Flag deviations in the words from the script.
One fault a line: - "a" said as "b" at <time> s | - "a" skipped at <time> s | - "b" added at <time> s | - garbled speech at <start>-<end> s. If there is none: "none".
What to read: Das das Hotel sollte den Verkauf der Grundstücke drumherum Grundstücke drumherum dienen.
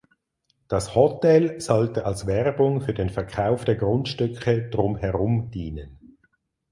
- "das" skipped at 0.9 s
- "als Werbung für" added at 2.0 s
- "Grundstücke drumherum" skipped at 5.5 s